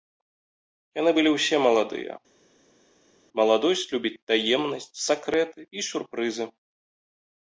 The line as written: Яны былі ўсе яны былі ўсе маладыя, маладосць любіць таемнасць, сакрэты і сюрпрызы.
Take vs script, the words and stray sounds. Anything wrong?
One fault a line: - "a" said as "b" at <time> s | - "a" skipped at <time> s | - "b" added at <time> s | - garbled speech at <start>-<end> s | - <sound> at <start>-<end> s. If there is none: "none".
- "яны былі ўсе" skipped at 1.6 s